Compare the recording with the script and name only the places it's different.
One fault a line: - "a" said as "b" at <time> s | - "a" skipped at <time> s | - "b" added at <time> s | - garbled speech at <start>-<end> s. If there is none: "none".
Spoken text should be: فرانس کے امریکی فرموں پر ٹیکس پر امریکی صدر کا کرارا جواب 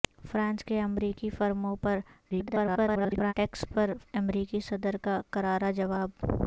- garbled speech at 2.3-3.3 s